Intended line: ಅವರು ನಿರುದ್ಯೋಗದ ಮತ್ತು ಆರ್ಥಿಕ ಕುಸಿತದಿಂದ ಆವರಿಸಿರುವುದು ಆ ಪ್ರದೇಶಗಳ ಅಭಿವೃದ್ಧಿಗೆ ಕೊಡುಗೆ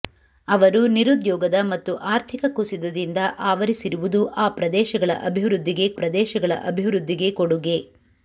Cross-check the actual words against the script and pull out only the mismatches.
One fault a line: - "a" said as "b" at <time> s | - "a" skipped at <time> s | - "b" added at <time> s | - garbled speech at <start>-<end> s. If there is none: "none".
- "ಪ್ರದೇಶಗಳ ಅಭಿವೃದ್ಧಿಗೆ" added at 6.0 s